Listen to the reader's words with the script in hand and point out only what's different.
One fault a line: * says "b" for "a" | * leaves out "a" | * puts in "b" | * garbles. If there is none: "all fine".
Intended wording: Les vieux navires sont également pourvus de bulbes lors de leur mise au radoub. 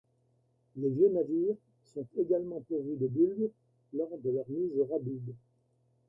all fine